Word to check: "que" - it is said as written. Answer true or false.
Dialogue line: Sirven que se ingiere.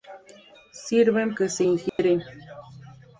true